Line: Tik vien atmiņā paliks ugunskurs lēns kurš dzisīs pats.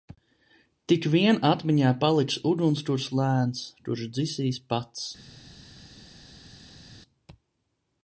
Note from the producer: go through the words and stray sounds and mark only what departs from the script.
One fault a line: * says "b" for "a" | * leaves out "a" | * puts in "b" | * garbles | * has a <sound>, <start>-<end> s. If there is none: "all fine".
all fine